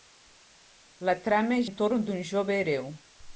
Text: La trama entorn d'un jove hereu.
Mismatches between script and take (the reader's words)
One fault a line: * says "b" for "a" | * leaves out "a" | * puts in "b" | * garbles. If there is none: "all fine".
all fine